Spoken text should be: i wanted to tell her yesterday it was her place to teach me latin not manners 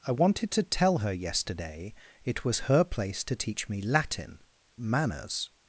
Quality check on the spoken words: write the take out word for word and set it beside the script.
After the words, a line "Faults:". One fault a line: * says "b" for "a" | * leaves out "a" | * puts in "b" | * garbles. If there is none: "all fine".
i wanted to tell her yesterday it was her place to teach me latin manners
Faults:
* leaves out "not"